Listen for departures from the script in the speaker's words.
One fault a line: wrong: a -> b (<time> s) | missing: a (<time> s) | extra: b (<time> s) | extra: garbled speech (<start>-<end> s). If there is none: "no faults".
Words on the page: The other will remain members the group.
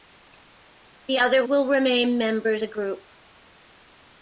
no faults